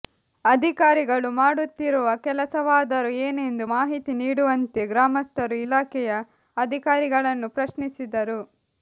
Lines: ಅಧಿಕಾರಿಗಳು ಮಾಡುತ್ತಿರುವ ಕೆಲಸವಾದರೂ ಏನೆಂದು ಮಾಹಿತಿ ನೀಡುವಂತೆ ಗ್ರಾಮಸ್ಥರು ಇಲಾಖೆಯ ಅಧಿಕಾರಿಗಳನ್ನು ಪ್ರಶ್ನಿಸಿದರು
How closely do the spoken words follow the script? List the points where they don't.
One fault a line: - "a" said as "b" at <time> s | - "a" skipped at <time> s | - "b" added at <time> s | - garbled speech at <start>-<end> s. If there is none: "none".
none